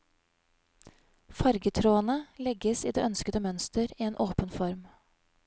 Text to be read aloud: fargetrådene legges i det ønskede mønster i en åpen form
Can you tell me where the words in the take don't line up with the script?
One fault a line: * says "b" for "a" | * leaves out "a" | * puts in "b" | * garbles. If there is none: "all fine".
all fine